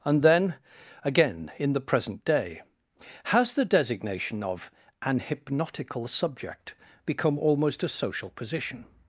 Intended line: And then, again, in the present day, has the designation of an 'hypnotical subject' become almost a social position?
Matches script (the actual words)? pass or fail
pass